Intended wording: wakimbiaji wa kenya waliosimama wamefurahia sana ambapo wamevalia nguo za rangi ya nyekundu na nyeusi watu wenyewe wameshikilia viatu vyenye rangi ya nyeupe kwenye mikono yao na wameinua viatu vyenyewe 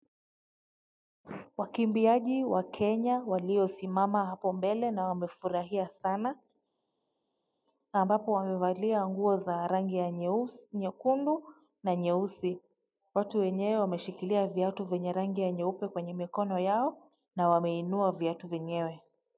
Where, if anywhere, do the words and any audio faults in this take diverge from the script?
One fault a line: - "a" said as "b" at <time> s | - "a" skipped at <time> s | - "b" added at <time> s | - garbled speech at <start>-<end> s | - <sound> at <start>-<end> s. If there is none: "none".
- "hapo mbele na" added at 4.2 s